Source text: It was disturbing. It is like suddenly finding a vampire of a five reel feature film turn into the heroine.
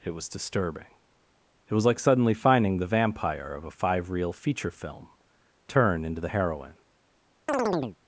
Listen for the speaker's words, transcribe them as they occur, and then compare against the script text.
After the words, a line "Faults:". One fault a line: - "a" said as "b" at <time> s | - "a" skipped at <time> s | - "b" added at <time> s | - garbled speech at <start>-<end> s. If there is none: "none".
It was disturbing. It was like suddenly finding the vampire of a five reel feature film turn into the heroine.
Faults:
- "is" said as "was" at 1.8 s
- "a" said as "the" at 2.8 s